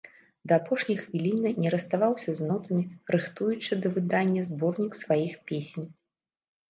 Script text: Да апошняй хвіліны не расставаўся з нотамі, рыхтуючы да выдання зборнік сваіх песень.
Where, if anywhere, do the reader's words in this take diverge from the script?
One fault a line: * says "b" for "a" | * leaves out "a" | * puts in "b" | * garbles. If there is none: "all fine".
all fine